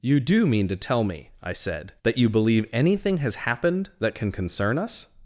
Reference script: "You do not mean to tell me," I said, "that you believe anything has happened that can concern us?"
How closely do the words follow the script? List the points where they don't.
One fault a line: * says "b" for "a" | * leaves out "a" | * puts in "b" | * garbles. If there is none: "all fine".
* leaves out "not"